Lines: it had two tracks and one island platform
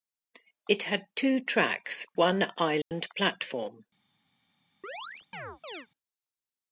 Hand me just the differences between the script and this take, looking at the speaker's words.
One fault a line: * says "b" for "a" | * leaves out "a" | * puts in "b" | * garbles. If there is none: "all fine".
* leaves out "and"